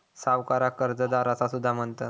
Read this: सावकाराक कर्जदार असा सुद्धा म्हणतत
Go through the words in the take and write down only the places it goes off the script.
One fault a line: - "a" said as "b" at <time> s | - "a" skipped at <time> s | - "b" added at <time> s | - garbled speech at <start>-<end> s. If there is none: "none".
none